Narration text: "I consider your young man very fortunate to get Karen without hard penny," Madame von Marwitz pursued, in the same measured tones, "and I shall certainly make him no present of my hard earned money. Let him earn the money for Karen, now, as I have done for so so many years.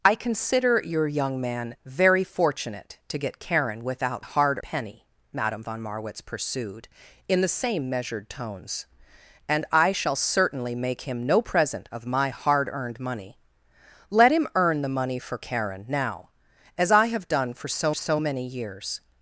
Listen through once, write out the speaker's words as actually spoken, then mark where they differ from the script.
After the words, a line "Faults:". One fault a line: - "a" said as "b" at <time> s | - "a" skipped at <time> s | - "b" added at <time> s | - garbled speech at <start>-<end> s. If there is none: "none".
"I consider your young man very fortunate to get Karen without hard penny," Madame von Marwitz pursued, in the same measured tones, "and I shall certainly make him no present of my hard earned money. Let him earn the money for Karen, now, as I have done for so so many years.
Faults:
none